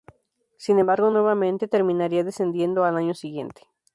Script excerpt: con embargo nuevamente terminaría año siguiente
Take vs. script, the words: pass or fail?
fail